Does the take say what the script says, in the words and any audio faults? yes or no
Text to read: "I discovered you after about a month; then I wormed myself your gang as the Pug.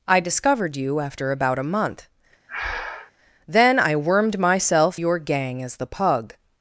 no